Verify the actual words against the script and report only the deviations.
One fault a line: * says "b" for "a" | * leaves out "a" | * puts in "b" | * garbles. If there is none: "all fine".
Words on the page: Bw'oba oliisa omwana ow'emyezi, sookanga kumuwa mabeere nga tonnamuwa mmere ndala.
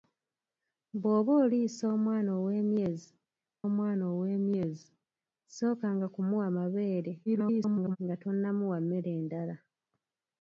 * puts in "omwana ow'emyezi"
* garbles